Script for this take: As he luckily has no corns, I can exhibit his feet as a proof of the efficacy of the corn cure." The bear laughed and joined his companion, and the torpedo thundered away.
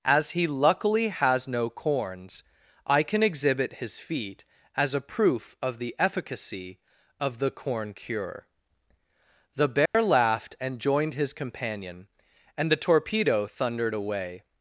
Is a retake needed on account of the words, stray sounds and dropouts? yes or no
yes